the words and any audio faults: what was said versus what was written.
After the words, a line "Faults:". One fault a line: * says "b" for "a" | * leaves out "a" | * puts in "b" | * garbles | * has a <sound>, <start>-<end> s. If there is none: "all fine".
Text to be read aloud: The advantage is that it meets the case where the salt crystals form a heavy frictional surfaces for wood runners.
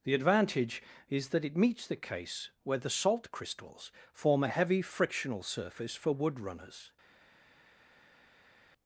The advantage is that it meets the case where the salt crystals form a heavy frictional surface for wood runners.
Faults:
* says "surface" for "surfaces"